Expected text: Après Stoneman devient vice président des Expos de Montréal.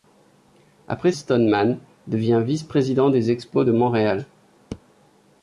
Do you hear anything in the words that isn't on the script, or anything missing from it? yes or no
no